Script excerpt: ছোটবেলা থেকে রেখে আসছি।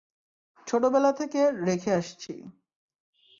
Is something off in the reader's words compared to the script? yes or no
no